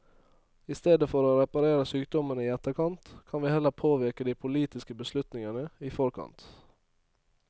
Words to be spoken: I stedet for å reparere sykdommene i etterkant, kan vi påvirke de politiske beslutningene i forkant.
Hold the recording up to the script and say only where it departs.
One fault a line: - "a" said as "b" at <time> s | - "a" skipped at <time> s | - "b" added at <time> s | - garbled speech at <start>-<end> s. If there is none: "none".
- "heller" added at 3.5 s